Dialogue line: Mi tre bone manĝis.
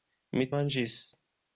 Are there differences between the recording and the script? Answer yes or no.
yes